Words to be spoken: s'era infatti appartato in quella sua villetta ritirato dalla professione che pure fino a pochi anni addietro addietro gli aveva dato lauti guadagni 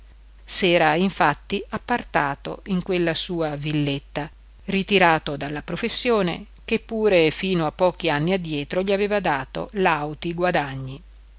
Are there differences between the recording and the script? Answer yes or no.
yes